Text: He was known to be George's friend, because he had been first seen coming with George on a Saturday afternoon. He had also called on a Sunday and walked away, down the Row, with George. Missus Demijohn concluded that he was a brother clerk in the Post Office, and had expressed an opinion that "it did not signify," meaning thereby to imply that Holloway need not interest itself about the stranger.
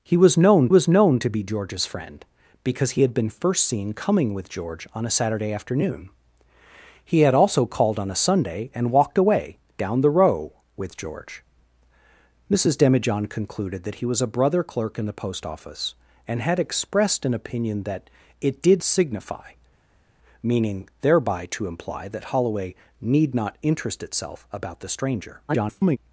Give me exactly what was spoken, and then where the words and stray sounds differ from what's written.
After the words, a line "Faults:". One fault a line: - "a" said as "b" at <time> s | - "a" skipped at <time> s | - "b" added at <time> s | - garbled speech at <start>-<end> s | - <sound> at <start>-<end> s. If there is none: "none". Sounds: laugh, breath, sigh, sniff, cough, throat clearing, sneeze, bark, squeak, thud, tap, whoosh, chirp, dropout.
He was known was known to be George's friend, because he had been first seen coming with George on a Saturday afternoon. He had also called on a Sunday and walked away, down the Row, with George. Missus Demijohn concluded that he was a brother clerk in the Post Office, and had expressed an opinion that "it did signify," meaning thereby to imply that Holloway need not interest itself about the stranger. [garbled]
Faults:
- "was known" added at 0.7 s
- "not" skipped at 18.8 s
- garbled speech at 25.5-26.0 s